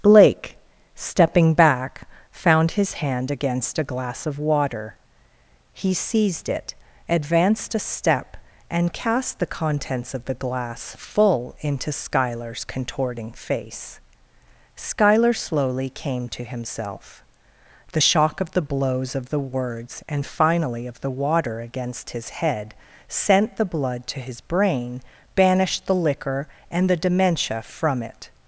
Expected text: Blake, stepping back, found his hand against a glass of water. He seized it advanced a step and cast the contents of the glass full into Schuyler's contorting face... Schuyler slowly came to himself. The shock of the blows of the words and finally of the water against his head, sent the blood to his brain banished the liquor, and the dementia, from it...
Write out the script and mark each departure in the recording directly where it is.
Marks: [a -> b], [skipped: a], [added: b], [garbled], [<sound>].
Blake, stepping back, found his hand against a glass of water. He seized it advanced a step and cast the contents of the glass full into Schuyler's contorting face... Schuyler slowly came to himself. The shock of the blows of the words and finally of the water against his head, sent the blood to his brain banished the liquor, and the dementia, from it...